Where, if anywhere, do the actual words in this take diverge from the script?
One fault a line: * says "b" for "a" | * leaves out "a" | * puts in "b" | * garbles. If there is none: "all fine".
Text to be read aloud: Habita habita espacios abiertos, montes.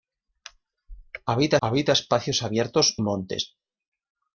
all fine